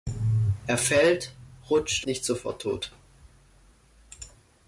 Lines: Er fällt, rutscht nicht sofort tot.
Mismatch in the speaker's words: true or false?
false